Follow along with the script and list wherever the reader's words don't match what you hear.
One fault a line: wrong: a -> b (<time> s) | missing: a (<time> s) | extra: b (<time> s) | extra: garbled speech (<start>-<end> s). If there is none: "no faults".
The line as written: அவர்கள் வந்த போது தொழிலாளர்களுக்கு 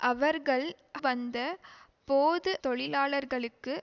no faults